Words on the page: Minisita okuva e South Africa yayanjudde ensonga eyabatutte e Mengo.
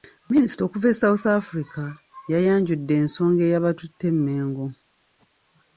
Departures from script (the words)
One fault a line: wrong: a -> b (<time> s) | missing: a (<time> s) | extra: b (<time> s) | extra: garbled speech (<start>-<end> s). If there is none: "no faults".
no faults